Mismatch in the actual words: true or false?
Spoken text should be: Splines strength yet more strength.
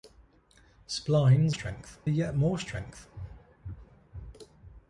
false